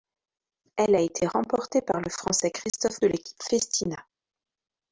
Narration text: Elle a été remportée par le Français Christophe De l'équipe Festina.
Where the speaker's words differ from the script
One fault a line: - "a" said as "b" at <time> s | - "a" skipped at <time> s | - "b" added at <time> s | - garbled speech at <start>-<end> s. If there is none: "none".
none